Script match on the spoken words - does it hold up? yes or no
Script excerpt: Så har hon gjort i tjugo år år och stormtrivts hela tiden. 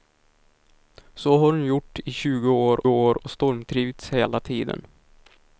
yes